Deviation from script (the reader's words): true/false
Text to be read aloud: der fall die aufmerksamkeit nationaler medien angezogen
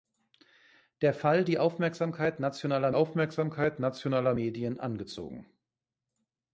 true